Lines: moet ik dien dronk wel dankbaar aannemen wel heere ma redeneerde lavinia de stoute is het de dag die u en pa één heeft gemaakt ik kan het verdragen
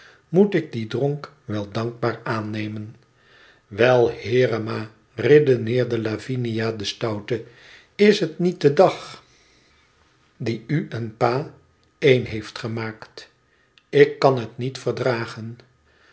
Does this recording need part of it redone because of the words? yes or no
yes